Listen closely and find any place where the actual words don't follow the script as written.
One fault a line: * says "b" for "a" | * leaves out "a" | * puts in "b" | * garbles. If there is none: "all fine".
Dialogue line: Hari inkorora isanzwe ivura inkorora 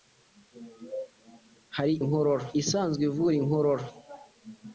all fine